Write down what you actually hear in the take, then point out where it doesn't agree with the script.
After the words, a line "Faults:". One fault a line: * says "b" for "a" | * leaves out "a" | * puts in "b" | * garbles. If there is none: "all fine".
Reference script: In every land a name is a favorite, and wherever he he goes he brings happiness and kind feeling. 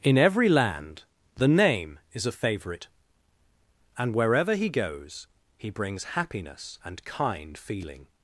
In every land the name is a favorite, and wherever he goes he brings happiness and kind feeling.
Faults:
* says "the" for "a"
* leaves out "he"